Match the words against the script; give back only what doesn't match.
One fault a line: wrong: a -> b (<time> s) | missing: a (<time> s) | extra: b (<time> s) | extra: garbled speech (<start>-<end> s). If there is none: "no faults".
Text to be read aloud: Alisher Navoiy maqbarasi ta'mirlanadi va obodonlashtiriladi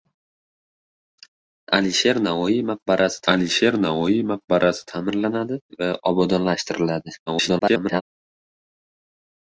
extra: alisher Navoiy maqbarasi (3.3 s)
extra: garbled speech (7.3-8.0 s)